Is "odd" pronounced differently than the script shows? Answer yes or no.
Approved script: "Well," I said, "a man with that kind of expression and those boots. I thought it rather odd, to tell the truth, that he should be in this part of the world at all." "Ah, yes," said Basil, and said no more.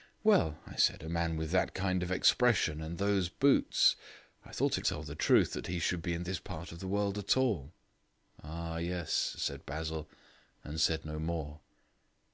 yes